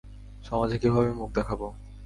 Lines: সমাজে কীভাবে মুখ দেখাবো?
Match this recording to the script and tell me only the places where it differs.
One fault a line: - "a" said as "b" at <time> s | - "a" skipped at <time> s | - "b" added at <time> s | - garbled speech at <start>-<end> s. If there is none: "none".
none